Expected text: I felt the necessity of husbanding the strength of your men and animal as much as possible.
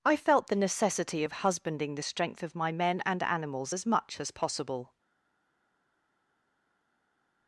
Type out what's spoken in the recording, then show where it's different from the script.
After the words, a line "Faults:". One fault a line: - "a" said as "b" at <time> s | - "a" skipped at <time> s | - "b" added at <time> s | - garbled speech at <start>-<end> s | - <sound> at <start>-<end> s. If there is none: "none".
I felt the necessity of husbanding the strength of my men and animals as much as possible.
Faults:
- "your" said as "my" at 2.5 s
- "animal" said as "animals" at 3.2 s